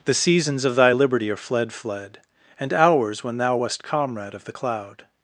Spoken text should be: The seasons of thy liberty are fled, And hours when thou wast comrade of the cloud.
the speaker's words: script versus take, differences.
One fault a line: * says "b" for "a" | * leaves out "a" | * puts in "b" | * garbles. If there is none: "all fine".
* puts in "fled"